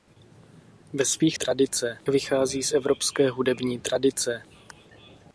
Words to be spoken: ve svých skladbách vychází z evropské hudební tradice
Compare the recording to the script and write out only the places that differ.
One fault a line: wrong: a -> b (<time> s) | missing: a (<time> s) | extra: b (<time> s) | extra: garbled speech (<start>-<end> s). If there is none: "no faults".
wrong: skladbách -> tradice (1.3 s)